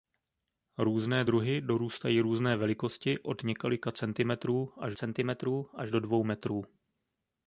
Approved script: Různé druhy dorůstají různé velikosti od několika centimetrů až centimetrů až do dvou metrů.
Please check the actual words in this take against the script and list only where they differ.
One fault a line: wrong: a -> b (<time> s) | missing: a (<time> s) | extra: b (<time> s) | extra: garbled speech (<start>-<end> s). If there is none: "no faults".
no faults